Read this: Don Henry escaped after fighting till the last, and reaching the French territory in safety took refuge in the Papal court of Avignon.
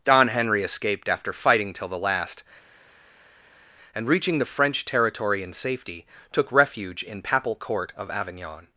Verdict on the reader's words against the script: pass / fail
fail